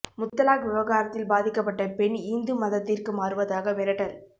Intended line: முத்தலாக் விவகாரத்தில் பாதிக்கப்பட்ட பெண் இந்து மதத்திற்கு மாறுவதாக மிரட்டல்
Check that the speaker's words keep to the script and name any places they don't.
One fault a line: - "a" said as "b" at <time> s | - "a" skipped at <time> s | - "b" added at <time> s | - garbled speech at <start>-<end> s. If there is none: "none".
none